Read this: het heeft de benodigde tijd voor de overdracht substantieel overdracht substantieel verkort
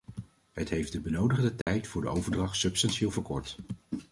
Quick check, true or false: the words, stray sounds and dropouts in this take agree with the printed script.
false